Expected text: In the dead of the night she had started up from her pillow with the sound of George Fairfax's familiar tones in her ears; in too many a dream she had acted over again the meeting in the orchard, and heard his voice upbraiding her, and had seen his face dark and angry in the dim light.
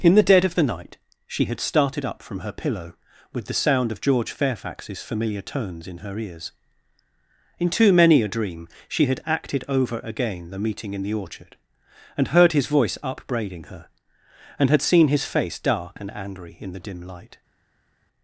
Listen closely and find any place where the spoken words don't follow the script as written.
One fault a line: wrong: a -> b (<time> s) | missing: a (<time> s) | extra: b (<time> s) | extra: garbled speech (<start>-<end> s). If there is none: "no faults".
no faults